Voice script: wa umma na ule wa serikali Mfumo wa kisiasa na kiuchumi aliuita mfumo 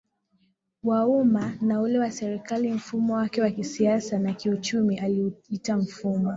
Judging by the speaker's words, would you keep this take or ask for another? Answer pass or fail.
fail